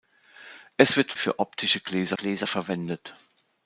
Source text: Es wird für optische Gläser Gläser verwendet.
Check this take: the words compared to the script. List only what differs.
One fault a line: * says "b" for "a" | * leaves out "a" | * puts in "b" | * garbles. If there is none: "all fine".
all fine